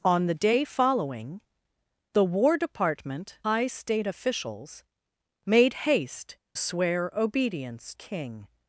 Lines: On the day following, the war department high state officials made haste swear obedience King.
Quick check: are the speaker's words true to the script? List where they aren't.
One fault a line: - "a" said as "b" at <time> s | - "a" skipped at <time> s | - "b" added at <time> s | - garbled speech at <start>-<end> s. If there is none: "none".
none